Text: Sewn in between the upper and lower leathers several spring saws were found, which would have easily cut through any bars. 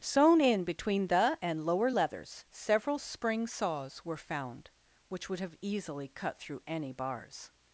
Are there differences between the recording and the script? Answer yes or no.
yes